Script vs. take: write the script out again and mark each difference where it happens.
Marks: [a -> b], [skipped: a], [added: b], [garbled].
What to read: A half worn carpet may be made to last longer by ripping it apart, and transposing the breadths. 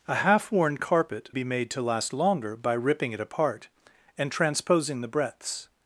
A half worn carpet [skipped: may] be made to last longer by ripping it apart, and transposing the breadths.